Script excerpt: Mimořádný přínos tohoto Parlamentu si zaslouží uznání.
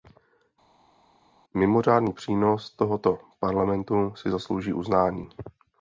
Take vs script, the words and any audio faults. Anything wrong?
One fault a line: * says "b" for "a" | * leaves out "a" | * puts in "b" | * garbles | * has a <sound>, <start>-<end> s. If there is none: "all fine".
all fine